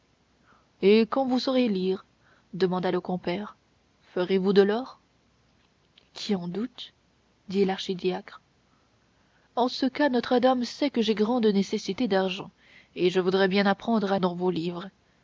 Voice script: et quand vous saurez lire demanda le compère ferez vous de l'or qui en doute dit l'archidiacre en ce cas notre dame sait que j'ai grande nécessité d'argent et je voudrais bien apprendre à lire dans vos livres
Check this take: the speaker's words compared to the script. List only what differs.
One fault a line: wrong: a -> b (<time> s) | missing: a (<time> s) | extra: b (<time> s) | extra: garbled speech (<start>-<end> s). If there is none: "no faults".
missing: lire (14.2 s)